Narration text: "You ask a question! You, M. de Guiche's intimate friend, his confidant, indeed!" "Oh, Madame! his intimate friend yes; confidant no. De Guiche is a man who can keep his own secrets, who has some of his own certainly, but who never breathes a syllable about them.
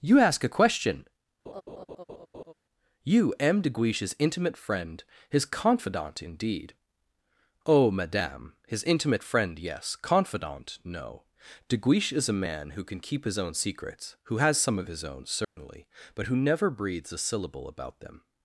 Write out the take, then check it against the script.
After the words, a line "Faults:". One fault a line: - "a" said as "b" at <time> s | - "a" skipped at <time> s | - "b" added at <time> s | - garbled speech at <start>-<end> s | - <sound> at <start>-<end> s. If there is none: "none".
"You ask a question! You, M. de Guiche's intimate friend, his confidant, indeed!" "Oh, Madame! his intimate friend yes; confidant no. De Guiche is a man who can keep his own secrets, who has some of his own certainly, but who never breathes a syllable about them.
Faults:
- laugh at 1.5-2.5 s
- dropout at 15.4-15.6 s